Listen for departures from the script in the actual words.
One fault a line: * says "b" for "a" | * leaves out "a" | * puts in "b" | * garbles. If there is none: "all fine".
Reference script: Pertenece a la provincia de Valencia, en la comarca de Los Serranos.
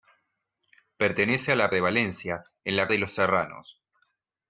* leaves out "provincia"
* leaves out "comarca"